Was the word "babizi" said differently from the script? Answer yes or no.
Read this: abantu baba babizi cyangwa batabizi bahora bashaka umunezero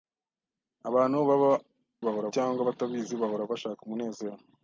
yes